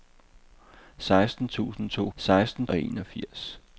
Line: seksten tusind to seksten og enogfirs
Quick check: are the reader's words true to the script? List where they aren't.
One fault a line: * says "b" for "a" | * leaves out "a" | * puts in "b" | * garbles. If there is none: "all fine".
all fine